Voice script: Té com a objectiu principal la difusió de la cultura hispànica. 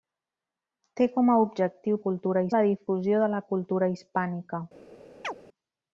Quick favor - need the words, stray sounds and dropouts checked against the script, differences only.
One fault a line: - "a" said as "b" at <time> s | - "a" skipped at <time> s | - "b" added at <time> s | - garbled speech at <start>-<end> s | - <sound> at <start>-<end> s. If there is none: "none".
- "principal" said as "cultura" at 2.1 s
- chirp at 5.2-5.4 s